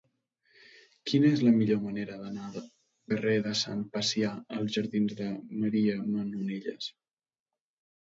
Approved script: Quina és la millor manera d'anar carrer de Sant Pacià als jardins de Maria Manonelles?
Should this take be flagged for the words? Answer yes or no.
no